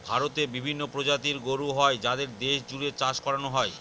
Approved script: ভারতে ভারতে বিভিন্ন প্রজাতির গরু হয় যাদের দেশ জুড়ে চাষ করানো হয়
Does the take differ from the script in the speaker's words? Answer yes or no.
yes